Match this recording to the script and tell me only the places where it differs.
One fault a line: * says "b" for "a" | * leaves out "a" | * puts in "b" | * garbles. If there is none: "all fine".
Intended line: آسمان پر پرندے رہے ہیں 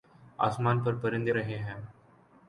all fine